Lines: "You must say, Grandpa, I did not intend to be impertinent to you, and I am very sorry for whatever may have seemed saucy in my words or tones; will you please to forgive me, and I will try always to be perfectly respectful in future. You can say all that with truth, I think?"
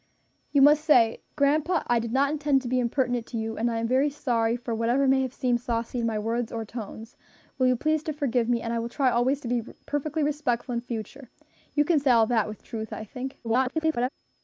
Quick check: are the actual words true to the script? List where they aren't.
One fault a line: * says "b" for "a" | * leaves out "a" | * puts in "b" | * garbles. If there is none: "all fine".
* garbles